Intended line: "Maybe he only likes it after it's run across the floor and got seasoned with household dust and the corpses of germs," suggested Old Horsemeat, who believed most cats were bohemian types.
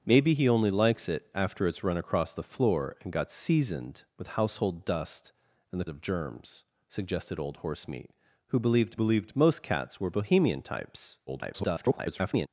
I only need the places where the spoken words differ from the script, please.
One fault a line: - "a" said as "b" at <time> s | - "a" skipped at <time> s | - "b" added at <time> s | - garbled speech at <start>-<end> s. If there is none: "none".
- "corpses" skipped at 5.8 s
- "believed" added at 8.9 s
- garbled speech at 11.3-12.5 s